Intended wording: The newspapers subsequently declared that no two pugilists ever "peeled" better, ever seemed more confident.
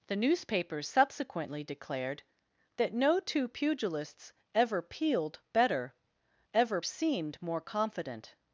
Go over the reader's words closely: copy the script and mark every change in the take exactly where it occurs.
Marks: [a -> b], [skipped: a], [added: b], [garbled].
The newspapers subsequently declared that no two pugilists ever "peeled" better, ever seemed more confident.